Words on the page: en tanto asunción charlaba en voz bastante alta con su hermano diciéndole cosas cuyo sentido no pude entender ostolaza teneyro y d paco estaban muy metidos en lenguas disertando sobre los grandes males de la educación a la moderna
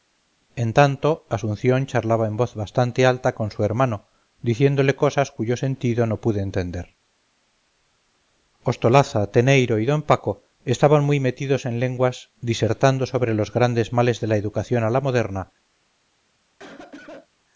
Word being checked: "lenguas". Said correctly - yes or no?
yes